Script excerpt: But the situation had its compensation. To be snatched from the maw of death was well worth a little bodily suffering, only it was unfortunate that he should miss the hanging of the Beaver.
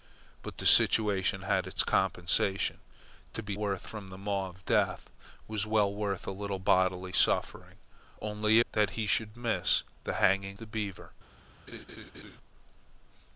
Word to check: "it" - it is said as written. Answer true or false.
false